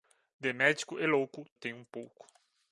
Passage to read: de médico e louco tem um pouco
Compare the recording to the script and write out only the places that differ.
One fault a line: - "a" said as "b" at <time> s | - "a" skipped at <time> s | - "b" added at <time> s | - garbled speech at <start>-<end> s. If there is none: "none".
none